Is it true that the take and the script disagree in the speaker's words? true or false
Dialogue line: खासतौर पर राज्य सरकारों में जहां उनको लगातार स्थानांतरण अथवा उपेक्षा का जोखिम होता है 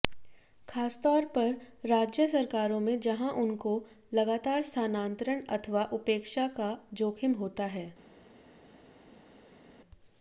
false